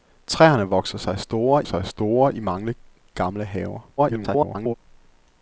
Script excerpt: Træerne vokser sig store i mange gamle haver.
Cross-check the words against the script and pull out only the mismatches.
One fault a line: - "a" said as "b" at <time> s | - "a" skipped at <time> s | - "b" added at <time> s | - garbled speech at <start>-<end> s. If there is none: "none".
- "sig store" added at 1.6 s
- garbled speech at 4.0-4.7 s